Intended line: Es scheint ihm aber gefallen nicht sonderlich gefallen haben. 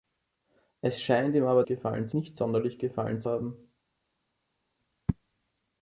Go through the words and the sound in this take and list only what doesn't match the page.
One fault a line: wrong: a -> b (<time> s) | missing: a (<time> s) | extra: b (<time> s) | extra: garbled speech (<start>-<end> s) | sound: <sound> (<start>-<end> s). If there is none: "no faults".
no faults